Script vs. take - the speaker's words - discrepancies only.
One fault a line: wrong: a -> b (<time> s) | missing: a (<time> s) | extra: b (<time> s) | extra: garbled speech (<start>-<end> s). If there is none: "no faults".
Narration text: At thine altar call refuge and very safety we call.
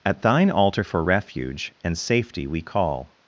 wrong: call -> for (0.8 s)
missing: very (2.0 s)